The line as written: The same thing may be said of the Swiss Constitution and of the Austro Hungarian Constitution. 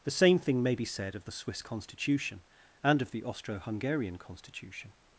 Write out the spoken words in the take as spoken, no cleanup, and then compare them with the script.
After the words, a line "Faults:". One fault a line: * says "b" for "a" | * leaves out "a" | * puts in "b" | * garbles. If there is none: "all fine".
The same thing may be said of the Swiss Constitution and of the Austro Hungarian Constitution.
Faults:
all fine